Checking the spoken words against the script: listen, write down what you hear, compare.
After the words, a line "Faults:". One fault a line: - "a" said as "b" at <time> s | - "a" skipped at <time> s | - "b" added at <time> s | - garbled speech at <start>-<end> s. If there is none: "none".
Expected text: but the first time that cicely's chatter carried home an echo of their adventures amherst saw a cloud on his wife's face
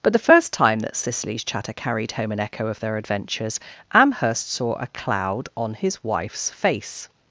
but the first time that cicely's chatter carried home an echo of their adventures amherst saw a cloud on his wife's face
Faults:
none